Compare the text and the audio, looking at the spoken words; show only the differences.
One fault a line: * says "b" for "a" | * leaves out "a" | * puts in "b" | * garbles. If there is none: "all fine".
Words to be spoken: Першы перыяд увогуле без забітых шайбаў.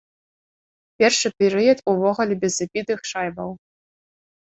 all fine